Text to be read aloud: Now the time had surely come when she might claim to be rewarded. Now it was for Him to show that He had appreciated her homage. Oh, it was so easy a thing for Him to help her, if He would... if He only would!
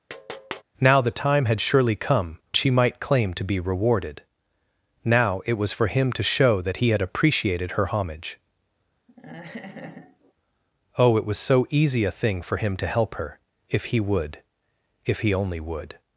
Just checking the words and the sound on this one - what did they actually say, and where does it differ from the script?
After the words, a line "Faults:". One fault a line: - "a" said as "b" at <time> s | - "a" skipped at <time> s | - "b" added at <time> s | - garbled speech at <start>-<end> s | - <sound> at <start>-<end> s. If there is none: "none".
Now the time had surely come she might claim to be rewarded. Now it was for Him to show that He had appreciated her homage. Oh, it was so easy a thing for Him to help her, if He would... if He only would!
Faults:
- tap at 0.1-0.6 s
- "when" skipped at 2.4 s
- laugh at 9.1-10.3 s